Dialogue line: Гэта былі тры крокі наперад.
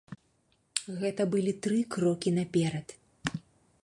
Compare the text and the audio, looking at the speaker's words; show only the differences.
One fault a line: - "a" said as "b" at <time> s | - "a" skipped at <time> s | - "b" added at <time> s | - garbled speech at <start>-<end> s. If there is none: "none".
none